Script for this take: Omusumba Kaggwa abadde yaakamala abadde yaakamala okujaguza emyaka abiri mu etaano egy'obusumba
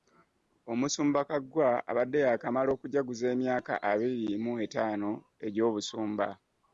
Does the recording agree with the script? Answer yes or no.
no